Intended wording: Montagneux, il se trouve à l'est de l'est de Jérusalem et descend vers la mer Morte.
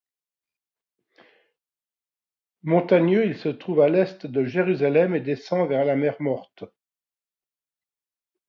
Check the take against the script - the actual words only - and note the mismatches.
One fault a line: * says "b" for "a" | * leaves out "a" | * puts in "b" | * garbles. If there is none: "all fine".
* leaves out "l'est de"